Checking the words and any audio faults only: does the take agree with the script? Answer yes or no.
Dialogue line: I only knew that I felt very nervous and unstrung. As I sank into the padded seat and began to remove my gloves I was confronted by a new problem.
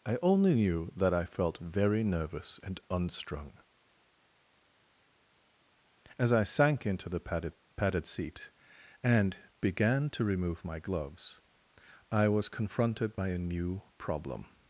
no